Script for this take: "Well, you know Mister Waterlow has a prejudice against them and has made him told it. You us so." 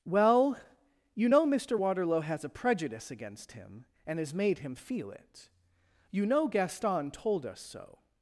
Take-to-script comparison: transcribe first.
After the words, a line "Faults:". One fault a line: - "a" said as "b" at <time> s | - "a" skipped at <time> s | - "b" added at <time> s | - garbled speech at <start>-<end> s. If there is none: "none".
"Well, you know Mister Waterlow has a prejudice against him and has made him feel it. You know Gaston told us so."
Faults:
- "them" said as "him" at 3.5 s
- "told" said as "feel" at 4.8 s
- "know Gaston told" added at 6.2 s